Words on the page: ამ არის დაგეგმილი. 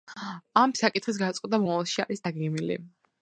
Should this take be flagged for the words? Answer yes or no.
yes